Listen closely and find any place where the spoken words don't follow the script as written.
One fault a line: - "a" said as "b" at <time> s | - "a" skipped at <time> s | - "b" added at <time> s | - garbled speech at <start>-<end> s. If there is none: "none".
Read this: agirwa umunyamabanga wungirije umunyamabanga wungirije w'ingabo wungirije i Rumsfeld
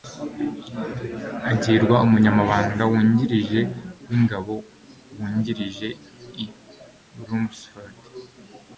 - "umunyamabanga wungirije" skipped at 3.6 s